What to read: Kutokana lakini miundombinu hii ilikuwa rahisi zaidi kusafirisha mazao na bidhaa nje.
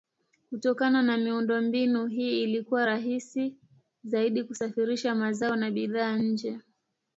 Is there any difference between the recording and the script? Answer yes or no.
yes